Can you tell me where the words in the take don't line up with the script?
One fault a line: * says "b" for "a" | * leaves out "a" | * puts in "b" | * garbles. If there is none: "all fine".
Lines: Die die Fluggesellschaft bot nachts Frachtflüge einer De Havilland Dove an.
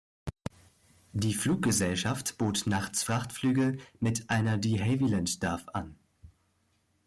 * leaves out "die"
* puts in "mit"